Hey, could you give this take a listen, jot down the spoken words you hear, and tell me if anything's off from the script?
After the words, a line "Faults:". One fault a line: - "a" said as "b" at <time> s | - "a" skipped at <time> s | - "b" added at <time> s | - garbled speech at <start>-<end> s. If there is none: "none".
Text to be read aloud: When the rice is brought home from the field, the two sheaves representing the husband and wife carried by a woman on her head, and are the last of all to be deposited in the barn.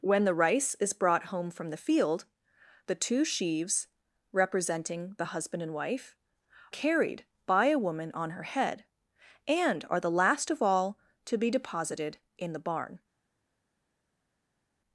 When the rice is brought home from the field, the two sheaves representing the husband and wife carried by a woman on her head, and are the last of all to be deposited in the barn.
Faults:
none